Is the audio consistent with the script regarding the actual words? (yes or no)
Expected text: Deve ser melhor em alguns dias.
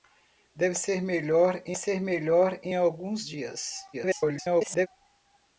no